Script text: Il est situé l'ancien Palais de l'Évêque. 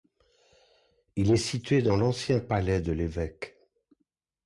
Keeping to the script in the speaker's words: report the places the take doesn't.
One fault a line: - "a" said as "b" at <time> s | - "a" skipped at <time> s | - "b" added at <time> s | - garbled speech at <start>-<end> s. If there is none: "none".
- "dans" added at 1.8 s